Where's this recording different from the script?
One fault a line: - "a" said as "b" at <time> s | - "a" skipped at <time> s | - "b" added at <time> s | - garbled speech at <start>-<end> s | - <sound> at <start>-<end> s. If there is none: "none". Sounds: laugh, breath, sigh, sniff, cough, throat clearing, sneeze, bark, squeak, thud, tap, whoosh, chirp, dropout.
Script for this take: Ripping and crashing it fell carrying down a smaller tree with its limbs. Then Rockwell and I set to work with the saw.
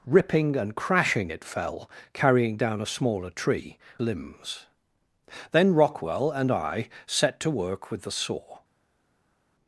- "with its" skipped at 3.8 s